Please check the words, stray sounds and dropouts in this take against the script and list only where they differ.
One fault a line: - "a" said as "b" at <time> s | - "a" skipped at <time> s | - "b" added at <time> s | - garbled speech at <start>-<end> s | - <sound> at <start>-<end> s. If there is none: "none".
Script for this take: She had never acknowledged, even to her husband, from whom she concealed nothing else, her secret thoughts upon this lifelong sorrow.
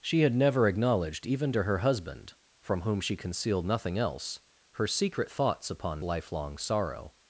- "this" skipped at 6.0 s